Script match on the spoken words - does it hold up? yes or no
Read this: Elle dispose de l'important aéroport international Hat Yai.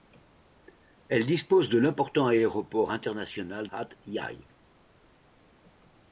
yes